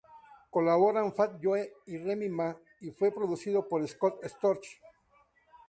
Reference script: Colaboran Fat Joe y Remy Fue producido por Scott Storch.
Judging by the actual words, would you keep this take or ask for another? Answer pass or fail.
fail